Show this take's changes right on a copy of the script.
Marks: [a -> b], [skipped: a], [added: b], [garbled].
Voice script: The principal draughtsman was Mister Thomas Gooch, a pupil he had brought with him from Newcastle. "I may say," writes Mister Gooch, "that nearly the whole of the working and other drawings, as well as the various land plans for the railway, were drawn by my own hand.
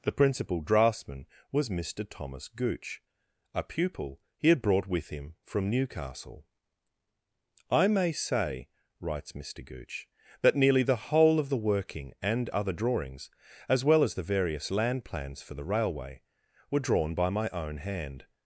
The principal draughtsman was Mister Thomas Gooch, a pupil he had brought with him from Newcastle. "I may say," writes Mister Gooch, "that nearly the whole of the working and other drawings, as well as the various land plans for the railway, were drawn by my own hand.